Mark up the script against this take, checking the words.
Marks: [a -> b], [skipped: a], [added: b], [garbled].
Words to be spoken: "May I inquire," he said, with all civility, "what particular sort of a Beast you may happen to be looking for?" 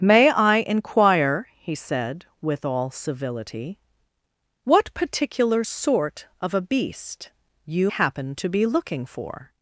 "May I inquire," he said, with all civility, "what particular sort of a Beast you [skipped: may] happen to be looking for?"